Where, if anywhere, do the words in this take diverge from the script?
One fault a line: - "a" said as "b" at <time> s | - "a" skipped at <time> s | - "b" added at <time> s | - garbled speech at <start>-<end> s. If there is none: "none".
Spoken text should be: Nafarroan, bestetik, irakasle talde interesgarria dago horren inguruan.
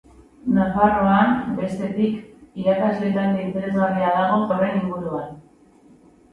none